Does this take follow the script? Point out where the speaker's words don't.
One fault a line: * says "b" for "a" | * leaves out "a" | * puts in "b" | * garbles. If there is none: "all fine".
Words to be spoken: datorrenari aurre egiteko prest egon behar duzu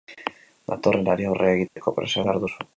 * leaves out "egon"